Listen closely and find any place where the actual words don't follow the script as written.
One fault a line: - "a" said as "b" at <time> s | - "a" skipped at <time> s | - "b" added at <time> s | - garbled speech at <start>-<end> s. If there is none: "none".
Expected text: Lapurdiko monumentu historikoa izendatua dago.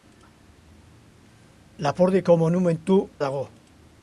- "historikoa izendatua" skipped at 3.0 s